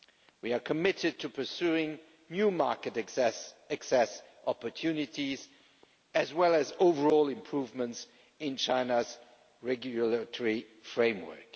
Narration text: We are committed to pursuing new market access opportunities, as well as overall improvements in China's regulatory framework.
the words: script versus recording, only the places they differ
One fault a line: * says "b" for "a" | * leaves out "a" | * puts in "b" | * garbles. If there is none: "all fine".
all fine